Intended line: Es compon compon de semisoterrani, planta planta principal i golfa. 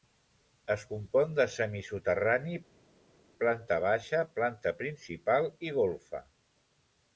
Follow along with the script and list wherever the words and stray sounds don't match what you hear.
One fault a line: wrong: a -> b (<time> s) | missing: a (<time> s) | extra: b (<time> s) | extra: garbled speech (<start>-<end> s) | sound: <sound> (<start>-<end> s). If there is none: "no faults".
missing: compon (1.3 s)
extra: baixa (3.9 s)